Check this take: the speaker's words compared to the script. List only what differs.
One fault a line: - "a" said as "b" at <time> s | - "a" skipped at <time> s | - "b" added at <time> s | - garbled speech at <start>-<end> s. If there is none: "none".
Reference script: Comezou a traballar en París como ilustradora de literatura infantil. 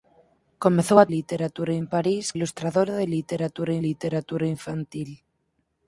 - "traballar" said as "literatura" at 1.2 s
- "como" skipped at 2.2 s
- "literatura" added at 3.9 s